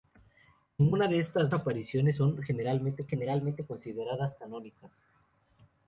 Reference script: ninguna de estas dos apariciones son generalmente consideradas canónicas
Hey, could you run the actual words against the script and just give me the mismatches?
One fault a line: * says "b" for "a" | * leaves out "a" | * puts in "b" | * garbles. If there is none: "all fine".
* leaves out "dos"
* puts in "generalmente"